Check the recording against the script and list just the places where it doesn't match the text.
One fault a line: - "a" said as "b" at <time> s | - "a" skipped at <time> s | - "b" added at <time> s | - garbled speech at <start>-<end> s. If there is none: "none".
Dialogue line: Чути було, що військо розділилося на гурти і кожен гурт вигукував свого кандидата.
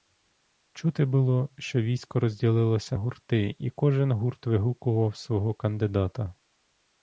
- "на" skipped at 3.0 s